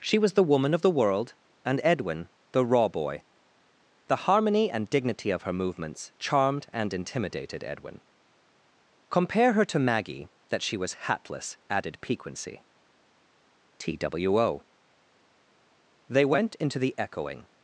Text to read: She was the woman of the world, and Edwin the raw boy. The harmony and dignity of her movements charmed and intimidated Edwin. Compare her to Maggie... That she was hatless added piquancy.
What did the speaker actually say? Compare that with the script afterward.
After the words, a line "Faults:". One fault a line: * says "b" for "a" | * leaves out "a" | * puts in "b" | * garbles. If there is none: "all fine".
She was the woman of the world, and Edwin the raw boy. The harmony and dignity of her movements charmed and intimidated Edwin. Compare her to Maggie... That she was hatless added piquancy. TWO. They went into the echoing
Faults:
* puts in "TWO They went into the echoing"